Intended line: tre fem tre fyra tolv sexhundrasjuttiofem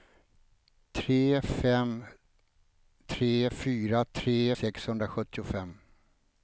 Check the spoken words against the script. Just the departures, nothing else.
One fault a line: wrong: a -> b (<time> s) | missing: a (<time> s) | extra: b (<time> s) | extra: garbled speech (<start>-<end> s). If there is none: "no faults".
wrong: tolv -> tre (4.2 s)